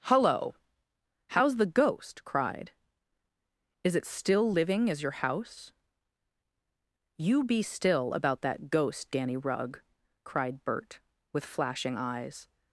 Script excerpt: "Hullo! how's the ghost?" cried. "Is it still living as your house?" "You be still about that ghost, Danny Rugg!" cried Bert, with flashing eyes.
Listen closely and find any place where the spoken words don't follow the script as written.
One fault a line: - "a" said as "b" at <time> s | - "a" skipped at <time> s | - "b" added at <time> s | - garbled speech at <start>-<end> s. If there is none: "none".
none